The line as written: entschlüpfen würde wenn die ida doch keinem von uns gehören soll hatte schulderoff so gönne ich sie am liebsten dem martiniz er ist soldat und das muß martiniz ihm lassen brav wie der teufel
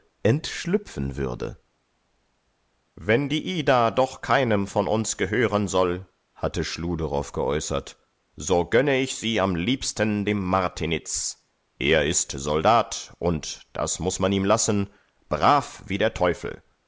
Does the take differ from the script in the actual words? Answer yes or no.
yes